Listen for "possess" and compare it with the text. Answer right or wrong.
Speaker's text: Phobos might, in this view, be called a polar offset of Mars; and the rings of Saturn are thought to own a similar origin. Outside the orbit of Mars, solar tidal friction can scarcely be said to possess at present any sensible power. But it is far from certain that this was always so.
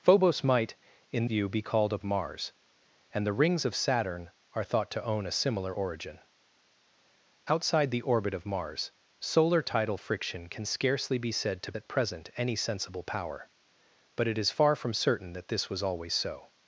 wrong